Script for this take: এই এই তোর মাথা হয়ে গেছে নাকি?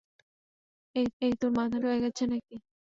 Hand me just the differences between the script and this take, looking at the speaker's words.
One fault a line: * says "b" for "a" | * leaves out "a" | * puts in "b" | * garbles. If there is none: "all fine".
all fine